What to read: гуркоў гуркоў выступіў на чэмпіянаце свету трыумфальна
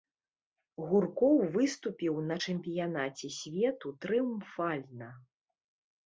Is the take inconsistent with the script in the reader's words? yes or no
yes